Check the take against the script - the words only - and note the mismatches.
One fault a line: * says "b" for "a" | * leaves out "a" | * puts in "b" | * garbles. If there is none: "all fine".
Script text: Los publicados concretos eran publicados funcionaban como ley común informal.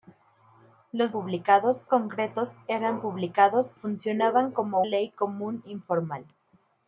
all fine